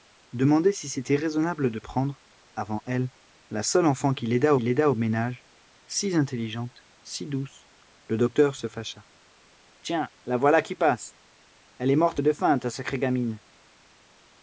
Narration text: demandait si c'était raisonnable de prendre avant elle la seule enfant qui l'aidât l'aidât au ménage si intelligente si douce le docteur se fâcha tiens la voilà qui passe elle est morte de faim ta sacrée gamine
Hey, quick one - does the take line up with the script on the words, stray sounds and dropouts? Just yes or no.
yes